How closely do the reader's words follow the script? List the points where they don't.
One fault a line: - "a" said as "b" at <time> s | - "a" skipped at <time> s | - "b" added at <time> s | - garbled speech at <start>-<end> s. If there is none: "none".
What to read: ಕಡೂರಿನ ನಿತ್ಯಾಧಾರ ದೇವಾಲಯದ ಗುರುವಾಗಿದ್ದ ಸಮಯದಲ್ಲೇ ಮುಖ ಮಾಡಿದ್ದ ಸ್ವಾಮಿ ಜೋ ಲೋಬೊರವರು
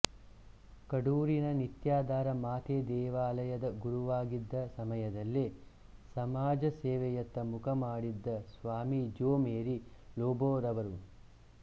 - "ಮಾತೆ" added at 2.4 s
- "ಸಮಾಜ ಸೇವೆಯತ್ತ" added at 6.2 s
- "ಮೇರಿ" added at 9.4 s